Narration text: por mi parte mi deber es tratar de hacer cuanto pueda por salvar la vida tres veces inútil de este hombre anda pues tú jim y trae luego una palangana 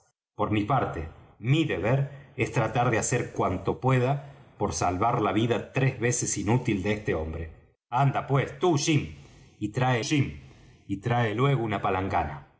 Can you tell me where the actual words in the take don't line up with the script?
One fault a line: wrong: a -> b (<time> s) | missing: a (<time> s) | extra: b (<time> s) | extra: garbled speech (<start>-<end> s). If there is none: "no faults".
extra: jim y trae (10.0 s)